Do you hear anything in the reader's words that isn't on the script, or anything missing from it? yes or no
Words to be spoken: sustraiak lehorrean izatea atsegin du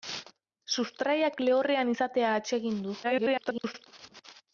yes